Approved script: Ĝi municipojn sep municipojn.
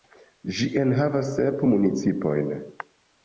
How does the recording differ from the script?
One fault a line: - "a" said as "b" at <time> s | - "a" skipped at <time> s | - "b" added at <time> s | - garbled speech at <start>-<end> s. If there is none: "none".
- "municipojn" said as "enhavas" at 0.8 s